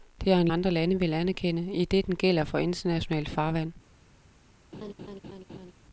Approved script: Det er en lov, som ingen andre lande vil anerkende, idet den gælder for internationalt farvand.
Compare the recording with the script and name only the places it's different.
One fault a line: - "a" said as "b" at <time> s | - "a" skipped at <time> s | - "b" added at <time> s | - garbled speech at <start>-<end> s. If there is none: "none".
- "lov som ingen" skipped at 0.5 s